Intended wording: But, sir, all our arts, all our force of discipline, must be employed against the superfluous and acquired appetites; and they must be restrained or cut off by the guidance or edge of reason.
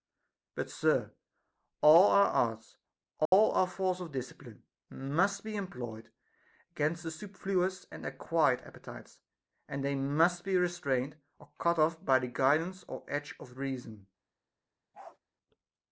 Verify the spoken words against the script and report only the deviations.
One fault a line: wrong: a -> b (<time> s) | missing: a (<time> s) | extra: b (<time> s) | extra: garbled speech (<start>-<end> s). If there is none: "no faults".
no faults